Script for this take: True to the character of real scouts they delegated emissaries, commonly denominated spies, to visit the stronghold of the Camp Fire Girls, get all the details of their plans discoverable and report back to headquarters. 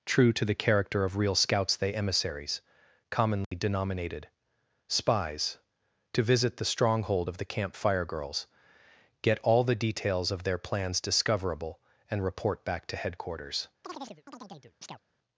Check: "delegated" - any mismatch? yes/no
yes